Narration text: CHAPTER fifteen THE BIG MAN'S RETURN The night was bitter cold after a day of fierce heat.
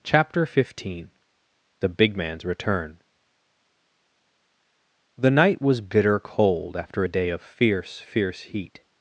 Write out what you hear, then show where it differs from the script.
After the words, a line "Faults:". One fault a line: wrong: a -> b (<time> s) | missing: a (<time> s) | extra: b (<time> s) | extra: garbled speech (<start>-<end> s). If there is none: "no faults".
CHAPTER fifteen THE BIG MAN'S RETURN The night was bitter cold after a day of fierce fierce heat.
Faults:
extra: fierce (8.0 s)